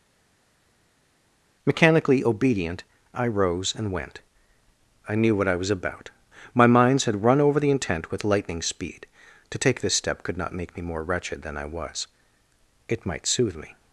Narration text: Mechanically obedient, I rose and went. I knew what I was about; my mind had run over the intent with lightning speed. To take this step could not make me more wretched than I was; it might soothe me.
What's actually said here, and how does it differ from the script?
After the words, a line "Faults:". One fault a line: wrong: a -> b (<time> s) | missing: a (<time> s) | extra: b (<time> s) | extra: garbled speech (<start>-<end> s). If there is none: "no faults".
Mechanically obedient, I rose and went. I knew what I was about; my minds had run over the intent with lightning speed. To take this step could not make me more wretched than I was; it might soothe me.
Faults:
wrong: mind -> minds (6.7 s)